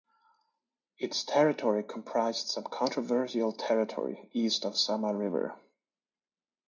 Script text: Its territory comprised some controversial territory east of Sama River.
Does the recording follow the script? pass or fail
pass